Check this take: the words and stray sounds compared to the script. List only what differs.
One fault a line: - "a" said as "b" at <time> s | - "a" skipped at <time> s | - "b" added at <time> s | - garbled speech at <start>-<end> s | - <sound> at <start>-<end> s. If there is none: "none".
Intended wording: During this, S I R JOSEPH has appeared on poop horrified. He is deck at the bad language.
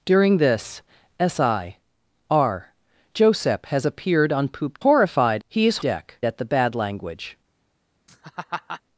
- laugh at 8.1-8.8 s